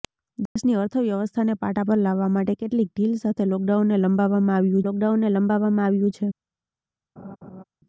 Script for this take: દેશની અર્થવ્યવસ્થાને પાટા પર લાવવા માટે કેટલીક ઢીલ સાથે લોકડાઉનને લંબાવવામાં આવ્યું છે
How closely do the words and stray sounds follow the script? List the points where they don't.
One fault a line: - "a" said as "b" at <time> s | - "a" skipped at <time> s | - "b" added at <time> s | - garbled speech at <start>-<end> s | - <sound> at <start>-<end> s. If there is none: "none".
- dropout at 0.5-0.6 s
- "લોકડાઉનને લંબાવવામાં આવ્યું" added at 4.8 s
- laugh at 7.2-7.6 s